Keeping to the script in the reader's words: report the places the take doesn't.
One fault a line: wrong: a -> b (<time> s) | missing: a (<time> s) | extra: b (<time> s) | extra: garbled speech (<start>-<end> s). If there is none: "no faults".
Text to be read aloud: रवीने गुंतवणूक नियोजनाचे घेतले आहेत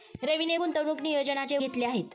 no faults